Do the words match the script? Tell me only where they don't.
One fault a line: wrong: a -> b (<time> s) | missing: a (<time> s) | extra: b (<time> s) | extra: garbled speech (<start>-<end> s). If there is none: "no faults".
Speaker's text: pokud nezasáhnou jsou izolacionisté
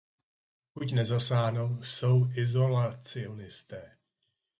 no faults